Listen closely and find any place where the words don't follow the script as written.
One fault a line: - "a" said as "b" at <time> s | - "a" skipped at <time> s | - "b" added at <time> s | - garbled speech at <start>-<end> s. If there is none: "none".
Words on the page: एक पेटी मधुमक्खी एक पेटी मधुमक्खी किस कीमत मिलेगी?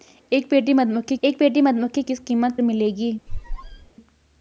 none